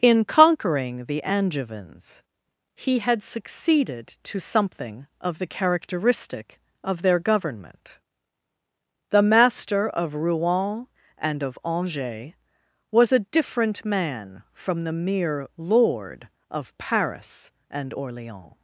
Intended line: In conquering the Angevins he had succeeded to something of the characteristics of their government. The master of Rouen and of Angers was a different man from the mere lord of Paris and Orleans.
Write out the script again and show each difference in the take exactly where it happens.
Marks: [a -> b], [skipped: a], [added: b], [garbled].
In conquering the Angevins he had succeeded to something of the [characteristics -> characteristic] of their government. The master of Rouen and of Angers was a different man from the mere lord of Paris and Orleans.